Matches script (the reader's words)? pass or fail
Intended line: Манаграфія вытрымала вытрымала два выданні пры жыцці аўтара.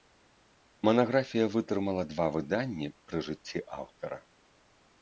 fail